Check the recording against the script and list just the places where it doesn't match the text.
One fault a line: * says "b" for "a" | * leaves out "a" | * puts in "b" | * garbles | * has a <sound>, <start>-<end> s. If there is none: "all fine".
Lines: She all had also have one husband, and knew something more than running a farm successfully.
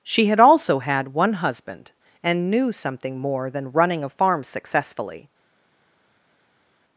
* leaves out "all"
* says "had" for "have"